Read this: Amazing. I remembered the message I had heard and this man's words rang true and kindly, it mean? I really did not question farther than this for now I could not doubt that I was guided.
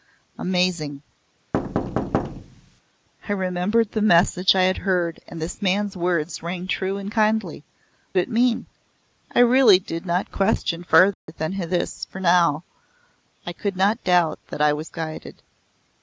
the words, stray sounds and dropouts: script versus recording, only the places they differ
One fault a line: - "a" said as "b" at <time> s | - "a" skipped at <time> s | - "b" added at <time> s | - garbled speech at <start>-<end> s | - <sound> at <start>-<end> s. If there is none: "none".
- thud at 1.5-2.8 s
- dropout at 11.1-11.3 s